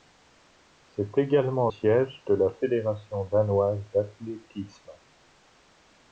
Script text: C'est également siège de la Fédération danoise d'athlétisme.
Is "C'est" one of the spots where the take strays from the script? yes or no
no